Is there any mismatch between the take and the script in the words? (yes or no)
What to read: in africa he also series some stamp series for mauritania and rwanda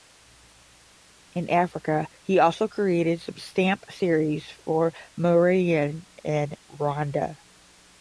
yes